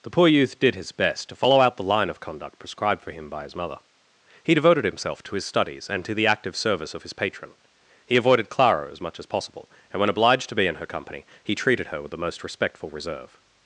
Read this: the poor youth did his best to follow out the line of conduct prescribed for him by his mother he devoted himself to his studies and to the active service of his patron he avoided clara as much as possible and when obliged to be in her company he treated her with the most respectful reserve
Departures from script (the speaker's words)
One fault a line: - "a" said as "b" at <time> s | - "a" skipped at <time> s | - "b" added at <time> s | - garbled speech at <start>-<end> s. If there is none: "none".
none